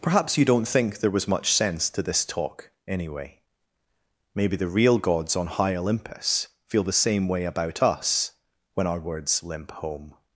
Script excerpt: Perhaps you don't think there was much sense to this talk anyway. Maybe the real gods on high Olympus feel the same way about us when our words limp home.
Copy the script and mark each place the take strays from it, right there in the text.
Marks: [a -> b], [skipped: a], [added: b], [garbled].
Perhaps you don't think there was much sense to this talk anyway. Maybe the real gods on high Olympus feel the same way about us when our words limp home.